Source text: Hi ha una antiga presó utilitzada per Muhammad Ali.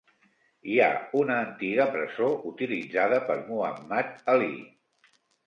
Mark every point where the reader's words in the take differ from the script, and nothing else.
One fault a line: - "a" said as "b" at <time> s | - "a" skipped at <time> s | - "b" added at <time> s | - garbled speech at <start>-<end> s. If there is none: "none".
none